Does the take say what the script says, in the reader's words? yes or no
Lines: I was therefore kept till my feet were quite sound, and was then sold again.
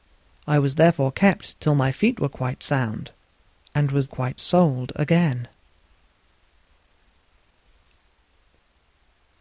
no